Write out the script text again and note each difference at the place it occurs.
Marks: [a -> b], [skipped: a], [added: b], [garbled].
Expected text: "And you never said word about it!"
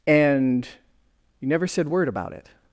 "And you never said word about it!"